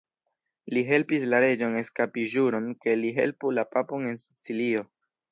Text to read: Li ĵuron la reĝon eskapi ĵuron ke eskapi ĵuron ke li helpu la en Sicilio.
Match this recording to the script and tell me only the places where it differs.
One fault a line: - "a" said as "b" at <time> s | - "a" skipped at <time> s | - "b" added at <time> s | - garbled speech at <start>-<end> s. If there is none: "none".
- "ĵuron" said as "helpis" at 0.8 s
- "eskapi ĵuron ke" skipped at 3.0 s
- "papon" added at 3.8 s